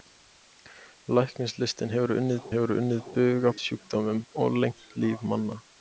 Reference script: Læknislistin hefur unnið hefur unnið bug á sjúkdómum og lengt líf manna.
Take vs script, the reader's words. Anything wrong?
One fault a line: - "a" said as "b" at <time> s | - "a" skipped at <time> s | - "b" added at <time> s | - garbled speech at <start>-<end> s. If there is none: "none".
none